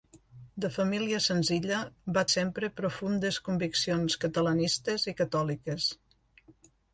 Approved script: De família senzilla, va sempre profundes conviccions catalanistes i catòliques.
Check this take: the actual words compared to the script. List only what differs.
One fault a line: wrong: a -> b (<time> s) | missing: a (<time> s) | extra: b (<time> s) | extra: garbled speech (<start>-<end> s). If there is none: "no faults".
no faults